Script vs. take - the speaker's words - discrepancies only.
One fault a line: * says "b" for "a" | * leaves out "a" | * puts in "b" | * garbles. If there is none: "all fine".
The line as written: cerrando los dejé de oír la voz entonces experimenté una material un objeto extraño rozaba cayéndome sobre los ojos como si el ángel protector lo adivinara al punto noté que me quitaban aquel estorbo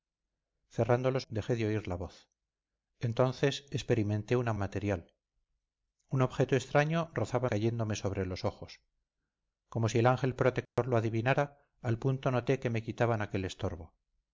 all fine